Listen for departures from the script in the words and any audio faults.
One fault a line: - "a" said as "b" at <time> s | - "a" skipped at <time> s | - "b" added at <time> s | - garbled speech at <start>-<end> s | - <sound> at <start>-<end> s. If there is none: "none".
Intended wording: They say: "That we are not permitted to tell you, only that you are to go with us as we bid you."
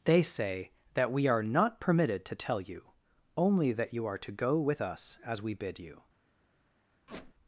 - squeak at 7.1-7.3 s